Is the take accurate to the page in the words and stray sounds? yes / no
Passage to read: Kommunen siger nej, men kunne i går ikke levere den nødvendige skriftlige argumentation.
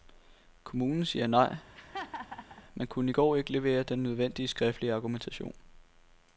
no